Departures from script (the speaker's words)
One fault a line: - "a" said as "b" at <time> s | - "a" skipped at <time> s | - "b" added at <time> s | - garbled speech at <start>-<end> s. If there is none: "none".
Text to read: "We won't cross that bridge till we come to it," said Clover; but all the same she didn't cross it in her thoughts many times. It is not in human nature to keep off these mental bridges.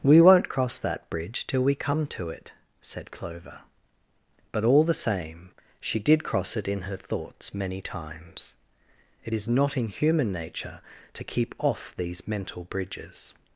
- "didn't" said as "did" at 6.0 s